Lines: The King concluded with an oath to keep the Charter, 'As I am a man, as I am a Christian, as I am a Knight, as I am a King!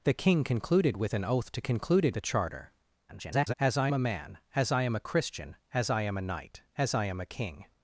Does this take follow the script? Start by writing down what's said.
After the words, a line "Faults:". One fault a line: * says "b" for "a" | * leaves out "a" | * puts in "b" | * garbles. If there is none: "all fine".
The King concluded with an oath to concluded the Charter, [garbled] 'As I a man, as I am a Christian, as I am a Knight, as I am a King!
Faults:
* says "concluded" for "keep"
* garbles
* leaves out "am"